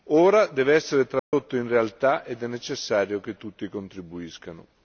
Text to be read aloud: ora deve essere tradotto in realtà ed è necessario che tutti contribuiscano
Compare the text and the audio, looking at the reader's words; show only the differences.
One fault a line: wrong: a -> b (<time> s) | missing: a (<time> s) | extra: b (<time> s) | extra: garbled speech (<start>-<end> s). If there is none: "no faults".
no faults